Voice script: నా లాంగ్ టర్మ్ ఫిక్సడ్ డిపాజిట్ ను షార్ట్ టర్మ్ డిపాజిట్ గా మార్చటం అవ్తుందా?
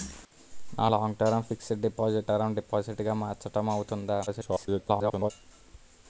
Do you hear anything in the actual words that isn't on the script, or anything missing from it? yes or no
yes